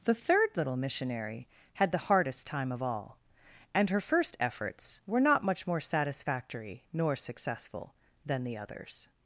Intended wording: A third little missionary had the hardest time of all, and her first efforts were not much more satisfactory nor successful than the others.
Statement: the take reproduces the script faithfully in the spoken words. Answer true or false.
false